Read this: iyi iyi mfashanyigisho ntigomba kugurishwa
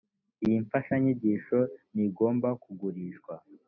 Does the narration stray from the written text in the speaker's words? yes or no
yes